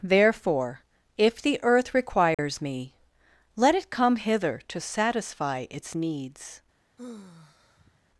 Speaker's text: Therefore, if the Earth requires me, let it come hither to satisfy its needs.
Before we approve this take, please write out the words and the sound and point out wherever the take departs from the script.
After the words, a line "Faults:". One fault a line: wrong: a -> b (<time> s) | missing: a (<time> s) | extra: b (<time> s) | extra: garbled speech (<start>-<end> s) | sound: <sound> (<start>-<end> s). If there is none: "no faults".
Therefore, if the Earth requires me, let it come hither to satisfy its needs.
Faults:
sound: dropout (2.3-2.4 s)
sound: sigh (7.0-8.1 s)